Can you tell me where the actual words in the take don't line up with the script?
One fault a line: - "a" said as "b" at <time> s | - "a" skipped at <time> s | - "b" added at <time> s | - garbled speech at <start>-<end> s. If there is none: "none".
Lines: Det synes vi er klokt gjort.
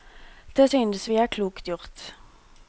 none